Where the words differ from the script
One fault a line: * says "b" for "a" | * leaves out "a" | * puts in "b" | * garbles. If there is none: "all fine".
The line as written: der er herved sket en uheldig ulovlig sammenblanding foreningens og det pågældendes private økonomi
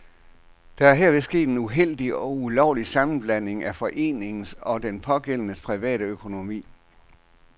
* puts in "og"
* puts in "af"
* says "den" for "det"